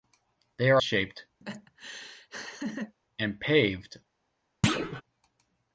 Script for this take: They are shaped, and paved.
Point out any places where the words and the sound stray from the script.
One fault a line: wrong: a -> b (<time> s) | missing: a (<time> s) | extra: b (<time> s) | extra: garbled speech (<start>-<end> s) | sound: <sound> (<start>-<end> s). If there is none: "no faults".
sound: laugh (1.4-2.9 s)
sound: thud (4.6-5.0 s)